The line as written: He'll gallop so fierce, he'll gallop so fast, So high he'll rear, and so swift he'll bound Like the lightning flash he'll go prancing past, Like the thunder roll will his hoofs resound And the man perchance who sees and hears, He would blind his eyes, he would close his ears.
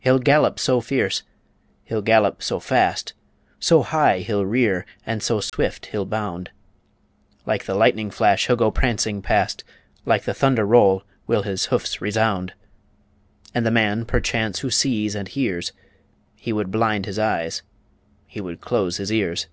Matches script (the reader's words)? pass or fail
pass